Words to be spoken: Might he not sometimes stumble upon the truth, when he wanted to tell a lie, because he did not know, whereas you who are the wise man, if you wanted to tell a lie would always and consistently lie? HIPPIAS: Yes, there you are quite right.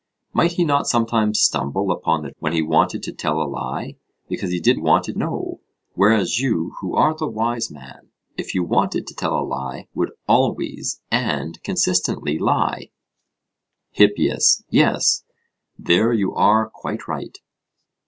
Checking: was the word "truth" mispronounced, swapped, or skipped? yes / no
yes